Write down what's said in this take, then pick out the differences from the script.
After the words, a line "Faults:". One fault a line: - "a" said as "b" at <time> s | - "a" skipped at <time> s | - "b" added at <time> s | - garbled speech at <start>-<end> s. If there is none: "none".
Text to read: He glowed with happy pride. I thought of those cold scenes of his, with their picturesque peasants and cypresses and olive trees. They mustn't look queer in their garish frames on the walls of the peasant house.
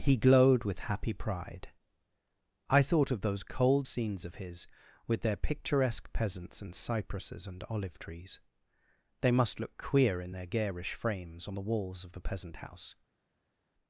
He glowed with happy pride. I thought of those cold scenes of his, with their picturesque peasants and cypresses and olive trees. They must look queer in their garish frames on the walls of the peasant house.
Faults:
- "mustn't" said as "must" at 9.3 s